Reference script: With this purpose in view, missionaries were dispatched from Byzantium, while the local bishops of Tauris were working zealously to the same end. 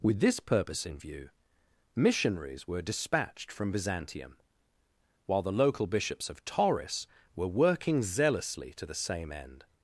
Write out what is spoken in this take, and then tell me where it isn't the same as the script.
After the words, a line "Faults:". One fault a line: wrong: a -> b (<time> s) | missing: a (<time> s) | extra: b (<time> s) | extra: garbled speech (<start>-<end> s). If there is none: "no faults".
With this purpose in view, missionaries were dispatched from Byzantium, while the local bishops of Tauris were working zealously to the same end.
Faults:
no faults